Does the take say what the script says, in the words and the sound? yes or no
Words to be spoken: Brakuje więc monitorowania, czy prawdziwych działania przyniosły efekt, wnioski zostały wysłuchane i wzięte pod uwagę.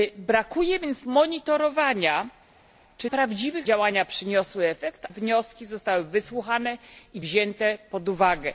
yes